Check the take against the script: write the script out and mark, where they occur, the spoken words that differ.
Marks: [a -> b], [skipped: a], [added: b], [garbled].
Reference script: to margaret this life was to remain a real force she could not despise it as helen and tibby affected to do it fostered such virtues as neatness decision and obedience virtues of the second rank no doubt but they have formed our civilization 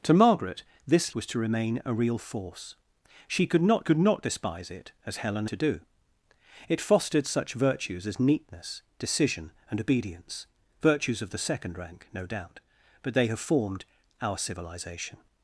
to margaret this [skipped: life] was to remain a real force she could not [added: could not] despise it as helen [skipped: and tibby affected] to do it fostered such virtues as neatness decision and obedience virtues of the second rank no doubt but they have formed our civilization